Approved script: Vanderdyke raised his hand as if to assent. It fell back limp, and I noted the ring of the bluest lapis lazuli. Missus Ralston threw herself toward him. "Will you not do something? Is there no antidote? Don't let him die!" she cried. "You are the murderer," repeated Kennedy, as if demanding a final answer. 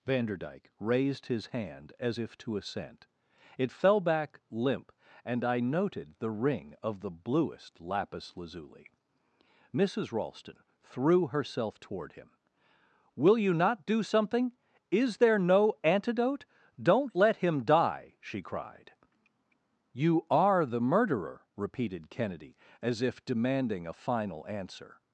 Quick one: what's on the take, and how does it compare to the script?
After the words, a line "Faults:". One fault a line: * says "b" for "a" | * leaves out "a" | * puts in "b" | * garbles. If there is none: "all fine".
Vanderdyke raised his hand as if to assent. It fell back limp, and I noted the ring of the bluest lapis lazuli. Missus Ralston threw herself toward him. "Will you not do something? Is there no antidote? Don't let him die!" she cried. "You are the murderer," repeated Kennedy, as if demanding a final answer.
Faults:
all fine